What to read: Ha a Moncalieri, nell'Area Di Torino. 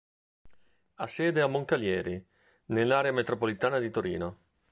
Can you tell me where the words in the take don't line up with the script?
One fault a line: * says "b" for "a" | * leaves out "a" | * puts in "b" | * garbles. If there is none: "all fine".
* puts in "sede"
* puts in "Metropolitana"